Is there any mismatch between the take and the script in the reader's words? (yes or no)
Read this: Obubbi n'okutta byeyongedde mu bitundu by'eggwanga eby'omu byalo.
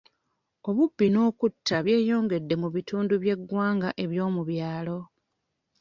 no